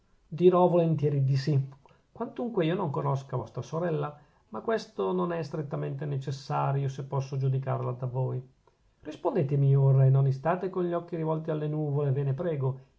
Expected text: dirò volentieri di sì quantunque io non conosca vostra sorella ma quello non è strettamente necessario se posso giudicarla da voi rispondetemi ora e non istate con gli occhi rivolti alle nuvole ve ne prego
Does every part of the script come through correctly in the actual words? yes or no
no